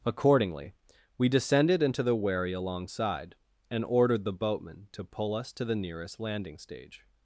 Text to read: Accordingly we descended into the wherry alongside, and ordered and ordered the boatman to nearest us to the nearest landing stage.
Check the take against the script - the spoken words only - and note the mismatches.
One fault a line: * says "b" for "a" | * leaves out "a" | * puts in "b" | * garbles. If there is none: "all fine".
* leaves out "and ordered"
* says "pull" for "nearest"